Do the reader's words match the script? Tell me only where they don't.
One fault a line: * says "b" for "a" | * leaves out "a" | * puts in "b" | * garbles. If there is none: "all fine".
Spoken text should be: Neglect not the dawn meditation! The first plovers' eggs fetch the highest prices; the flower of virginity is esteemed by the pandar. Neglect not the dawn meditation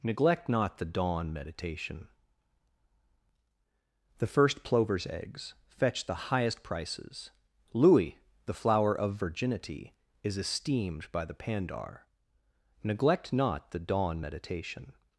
* puts in "louis"